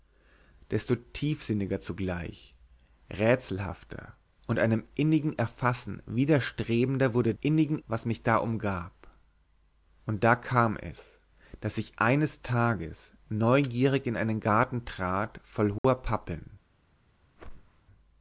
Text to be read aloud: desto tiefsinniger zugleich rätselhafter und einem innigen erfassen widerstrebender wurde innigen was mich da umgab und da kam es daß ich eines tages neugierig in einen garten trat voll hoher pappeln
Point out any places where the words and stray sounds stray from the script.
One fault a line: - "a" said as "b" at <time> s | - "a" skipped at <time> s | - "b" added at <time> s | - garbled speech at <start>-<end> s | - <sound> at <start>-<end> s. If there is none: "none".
- dropout at 15.8-15.8 s
- whoosh at 17.4-17.8 s